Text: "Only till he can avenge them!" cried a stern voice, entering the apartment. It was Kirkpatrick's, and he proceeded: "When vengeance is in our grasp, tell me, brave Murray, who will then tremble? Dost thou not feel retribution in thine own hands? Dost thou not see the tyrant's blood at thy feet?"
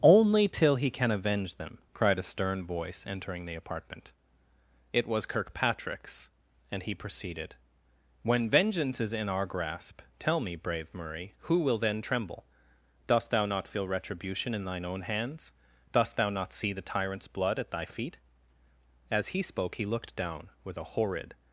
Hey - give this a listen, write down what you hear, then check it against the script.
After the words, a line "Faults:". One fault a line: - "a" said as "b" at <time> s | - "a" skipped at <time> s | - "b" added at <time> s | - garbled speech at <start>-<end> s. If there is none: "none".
"Only till he can avenge them!" cried a stern voice, entering the apartment. It was Kirkpatrick's, and he proceeded: "When vengeance is in our grasp, tell me, brave Murray, who will then tremble? Dost thou not feel retribution in thine own hands? Dost thou not see the tyrant's blood at thy feet?" As he spoke, he looked down, with a horrid
Faults:
- "As he spoke he looked down with a horrid" added at 19.1 s